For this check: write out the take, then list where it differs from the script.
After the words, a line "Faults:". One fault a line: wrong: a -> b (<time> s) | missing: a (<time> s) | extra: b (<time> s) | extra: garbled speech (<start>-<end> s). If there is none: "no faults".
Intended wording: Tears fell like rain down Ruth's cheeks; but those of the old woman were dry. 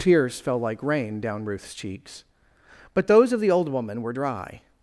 Tears fell like rain down Ruth's cheeks; but those of the old woman were dry.
Faults:
no faults